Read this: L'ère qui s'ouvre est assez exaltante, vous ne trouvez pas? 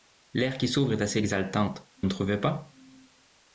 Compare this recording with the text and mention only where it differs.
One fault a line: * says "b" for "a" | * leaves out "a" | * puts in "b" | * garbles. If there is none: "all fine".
* leaves out "vous"